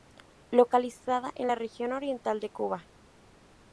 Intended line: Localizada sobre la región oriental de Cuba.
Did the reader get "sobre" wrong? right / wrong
wrong